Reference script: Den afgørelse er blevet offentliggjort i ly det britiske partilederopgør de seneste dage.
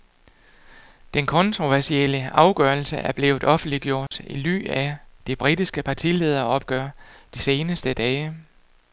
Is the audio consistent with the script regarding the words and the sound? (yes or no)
no